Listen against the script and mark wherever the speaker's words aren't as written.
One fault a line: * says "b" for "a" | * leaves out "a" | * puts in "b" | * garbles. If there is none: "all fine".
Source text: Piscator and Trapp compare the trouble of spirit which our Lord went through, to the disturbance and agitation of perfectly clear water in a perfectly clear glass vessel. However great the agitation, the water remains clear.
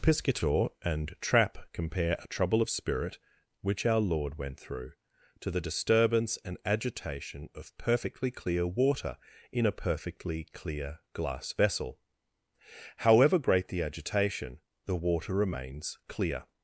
* says "a" for "the"